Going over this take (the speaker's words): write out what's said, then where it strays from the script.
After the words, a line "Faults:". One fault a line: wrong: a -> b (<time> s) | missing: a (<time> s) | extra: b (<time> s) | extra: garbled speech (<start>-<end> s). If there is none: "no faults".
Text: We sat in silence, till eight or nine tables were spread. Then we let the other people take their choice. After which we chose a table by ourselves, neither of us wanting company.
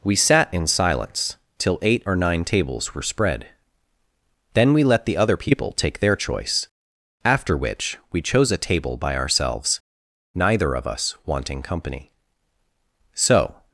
We sat in silence, till eight or nine tables were spread. Then we let the other people take their choice. After which we chose a table by ourselves, neither of us wanting company. So
Faults:
extra: So (13.1 s)